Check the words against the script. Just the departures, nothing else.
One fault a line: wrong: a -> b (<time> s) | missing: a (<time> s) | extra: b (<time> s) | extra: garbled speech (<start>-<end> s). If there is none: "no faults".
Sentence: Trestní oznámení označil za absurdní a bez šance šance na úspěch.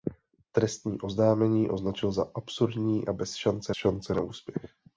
no faults